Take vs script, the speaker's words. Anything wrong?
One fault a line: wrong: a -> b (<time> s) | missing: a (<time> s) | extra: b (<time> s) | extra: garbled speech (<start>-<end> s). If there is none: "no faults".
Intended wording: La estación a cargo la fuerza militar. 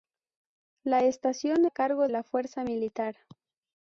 no faults